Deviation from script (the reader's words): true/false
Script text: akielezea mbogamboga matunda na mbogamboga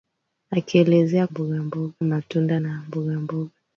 false